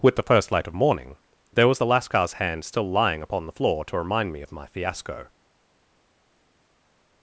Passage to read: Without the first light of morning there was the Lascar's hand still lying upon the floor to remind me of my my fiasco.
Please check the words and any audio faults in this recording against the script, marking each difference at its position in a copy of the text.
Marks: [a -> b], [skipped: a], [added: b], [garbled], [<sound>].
[Without -> With] the first light of morning there was the Lascar's hand still lying upon the floor to remind me of my [skipped: my] fiasco.